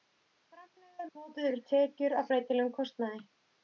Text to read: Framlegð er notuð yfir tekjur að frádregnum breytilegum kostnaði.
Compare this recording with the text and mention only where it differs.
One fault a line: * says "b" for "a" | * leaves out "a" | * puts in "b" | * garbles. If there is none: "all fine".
* leaves out "frádregnum"